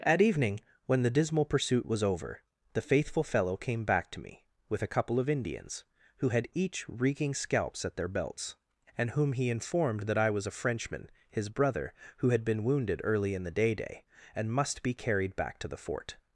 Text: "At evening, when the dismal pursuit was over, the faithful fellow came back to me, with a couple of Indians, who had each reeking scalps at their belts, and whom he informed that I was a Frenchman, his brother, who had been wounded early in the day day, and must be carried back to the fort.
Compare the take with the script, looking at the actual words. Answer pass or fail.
pass